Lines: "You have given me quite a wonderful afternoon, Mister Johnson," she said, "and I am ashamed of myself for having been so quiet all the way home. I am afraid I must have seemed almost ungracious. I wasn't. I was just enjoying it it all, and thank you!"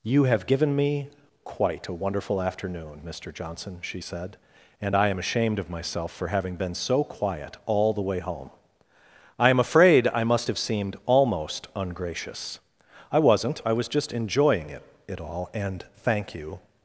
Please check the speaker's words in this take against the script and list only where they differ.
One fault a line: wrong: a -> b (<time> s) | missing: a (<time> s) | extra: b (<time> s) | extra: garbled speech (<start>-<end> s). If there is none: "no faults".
no faults